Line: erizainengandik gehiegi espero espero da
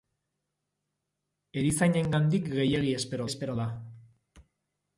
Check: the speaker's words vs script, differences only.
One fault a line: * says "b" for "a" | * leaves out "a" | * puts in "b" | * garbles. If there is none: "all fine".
all fine